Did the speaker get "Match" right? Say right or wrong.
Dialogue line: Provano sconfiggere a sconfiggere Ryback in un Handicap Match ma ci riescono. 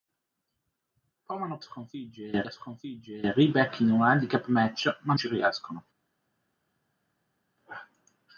right